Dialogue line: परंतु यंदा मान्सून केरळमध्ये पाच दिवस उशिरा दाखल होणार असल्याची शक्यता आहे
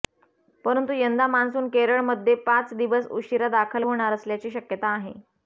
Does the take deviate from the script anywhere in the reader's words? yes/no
no